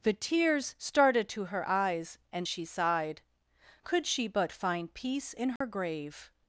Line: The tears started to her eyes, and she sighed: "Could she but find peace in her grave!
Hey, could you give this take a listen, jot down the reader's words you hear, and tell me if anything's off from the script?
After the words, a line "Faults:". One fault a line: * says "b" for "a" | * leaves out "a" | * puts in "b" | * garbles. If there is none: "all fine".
The tears started to her eyes, and she sighed: "Could she but find peace in her grave!
Faults:
all fine